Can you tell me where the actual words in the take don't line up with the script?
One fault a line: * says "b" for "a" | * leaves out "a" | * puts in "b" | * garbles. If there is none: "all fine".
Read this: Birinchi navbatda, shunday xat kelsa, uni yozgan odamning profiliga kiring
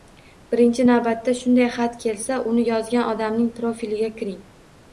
all fine